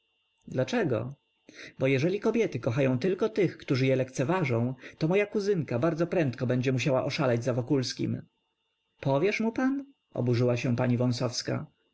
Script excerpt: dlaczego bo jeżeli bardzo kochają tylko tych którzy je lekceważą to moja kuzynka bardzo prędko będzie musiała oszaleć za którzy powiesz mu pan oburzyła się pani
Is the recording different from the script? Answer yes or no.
yes